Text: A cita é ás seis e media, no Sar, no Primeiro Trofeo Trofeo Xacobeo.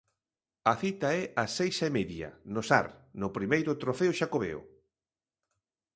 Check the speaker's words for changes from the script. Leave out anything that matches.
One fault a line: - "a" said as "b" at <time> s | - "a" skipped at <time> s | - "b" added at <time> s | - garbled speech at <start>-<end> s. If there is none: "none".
- "Trofeo" skipped at 4.1 s